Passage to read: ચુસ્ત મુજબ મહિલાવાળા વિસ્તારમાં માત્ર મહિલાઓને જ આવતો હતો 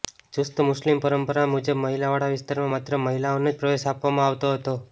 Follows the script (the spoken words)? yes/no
no